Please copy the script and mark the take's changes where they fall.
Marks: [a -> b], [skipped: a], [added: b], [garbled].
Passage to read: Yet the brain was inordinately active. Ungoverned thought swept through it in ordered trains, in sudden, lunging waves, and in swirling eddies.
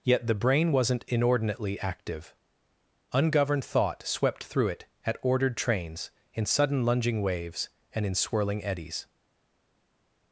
Yet the brain [was -> wasn't] inordinately active. Ungoverned thought swept through it [in -> at] ordered trains, in sudden, lunging waves, and in swirling eddies.